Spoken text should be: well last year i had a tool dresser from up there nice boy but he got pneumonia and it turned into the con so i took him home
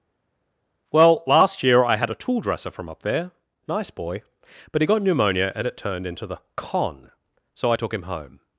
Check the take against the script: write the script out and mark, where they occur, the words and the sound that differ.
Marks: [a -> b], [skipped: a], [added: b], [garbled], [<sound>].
well last year i had a tool dresser from up there nice boy but he got pneumonia and it turned into the con so i took him home